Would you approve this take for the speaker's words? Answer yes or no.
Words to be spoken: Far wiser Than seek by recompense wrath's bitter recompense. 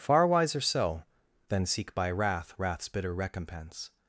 no